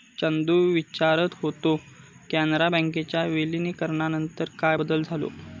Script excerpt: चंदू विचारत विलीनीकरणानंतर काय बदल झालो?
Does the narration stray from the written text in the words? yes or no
yes